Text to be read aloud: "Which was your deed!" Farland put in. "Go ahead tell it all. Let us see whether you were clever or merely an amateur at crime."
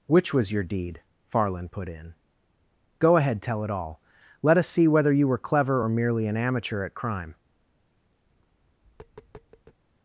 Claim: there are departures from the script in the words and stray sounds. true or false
true